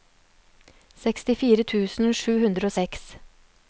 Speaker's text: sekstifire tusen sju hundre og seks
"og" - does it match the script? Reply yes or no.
yes